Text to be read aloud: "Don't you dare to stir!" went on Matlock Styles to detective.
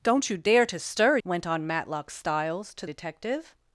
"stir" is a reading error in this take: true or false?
false